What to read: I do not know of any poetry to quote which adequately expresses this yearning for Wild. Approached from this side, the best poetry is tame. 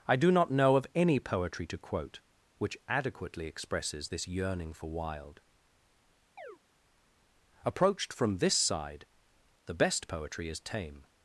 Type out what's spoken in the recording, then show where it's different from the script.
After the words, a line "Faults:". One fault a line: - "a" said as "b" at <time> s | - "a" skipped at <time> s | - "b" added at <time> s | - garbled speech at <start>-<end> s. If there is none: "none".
I do not know of any poetry to quote which adequately expresses this yearning for Wild. Approached from this side, the best poetry is tame.
Faults:
none